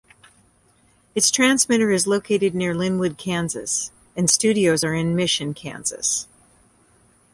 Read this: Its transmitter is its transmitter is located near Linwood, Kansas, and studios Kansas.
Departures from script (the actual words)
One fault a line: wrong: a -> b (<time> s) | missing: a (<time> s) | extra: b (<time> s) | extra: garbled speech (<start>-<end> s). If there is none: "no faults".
missing: its transmitter is (2.1 s)
extra: are in Mission (4.8 s)